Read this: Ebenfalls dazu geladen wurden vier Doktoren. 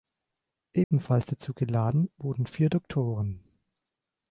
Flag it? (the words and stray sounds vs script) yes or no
yes